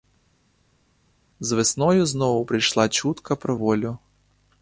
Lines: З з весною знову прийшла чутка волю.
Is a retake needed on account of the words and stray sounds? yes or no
yes